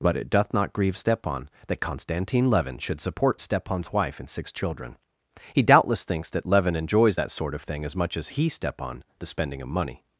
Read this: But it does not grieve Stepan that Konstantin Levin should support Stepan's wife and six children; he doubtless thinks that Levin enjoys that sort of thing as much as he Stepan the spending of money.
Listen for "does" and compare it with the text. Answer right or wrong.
wrong